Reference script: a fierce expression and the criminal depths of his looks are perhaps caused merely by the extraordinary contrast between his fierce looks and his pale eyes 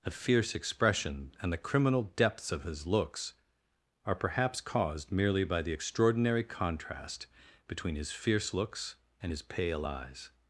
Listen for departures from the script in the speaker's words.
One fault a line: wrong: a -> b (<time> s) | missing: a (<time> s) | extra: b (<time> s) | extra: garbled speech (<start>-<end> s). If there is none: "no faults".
no faults